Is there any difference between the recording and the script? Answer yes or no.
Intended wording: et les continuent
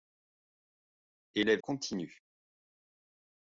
no